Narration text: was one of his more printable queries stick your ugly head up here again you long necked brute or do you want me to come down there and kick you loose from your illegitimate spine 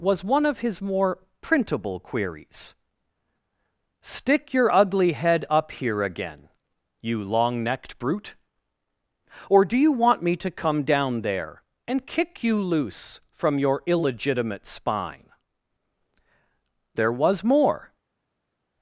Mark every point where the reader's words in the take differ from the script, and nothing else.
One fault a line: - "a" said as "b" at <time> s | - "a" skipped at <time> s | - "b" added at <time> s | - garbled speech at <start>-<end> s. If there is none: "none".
- "there was more" added at 17.0 s